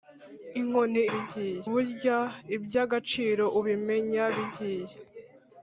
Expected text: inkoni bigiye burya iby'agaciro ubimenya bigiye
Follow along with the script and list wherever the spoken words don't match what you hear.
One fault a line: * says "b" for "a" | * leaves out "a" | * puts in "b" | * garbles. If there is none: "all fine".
all fine